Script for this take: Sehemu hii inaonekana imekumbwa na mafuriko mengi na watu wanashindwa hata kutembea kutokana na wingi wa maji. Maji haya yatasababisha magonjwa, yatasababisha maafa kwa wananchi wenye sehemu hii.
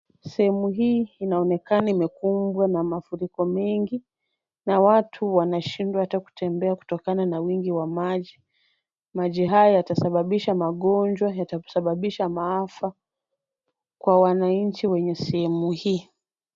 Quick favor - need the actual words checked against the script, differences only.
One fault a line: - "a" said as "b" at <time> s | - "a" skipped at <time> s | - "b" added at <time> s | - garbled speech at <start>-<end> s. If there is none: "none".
none